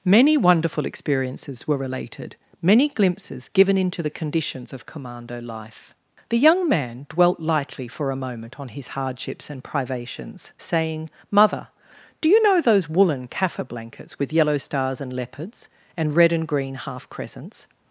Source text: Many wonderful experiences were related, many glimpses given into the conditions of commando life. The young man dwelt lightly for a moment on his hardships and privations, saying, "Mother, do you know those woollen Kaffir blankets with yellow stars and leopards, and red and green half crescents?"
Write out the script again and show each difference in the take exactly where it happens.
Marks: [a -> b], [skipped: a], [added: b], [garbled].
Many wonderful experiences were related, many glimpses given into the conditions of commando life. The young man dwelt lightly for a moment on his hardships and privations, saying, "Mother, do you know those woollen Kaffir blankets with yellow stars and leopards, and red and green half crescents?"